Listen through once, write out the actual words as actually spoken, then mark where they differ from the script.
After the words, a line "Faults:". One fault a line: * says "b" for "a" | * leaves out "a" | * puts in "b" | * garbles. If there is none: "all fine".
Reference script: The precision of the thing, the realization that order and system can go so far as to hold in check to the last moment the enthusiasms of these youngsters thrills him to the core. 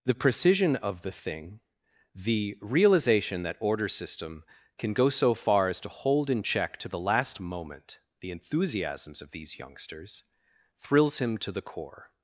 The precision of the thing, the realization that order system can go so far as to hold in check to the last moment the enthusiasms of these youngsters thrills him to the core.
Faults:
* leaves out "and"